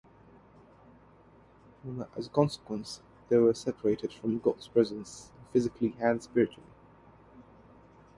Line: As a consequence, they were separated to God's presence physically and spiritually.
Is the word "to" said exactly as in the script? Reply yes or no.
no